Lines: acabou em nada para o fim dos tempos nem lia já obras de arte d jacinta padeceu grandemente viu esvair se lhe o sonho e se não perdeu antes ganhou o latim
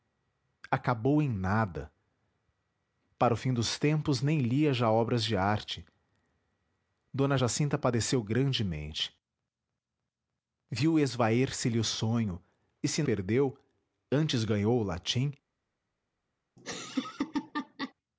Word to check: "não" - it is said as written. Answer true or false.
false